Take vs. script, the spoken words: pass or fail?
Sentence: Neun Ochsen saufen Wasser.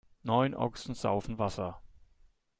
pass